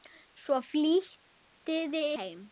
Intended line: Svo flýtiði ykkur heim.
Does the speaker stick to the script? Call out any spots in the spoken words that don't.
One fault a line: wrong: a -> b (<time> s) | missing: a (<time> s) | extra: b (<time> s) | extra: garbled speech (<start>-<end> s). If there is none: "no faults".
missing: ykkur (2.0 s)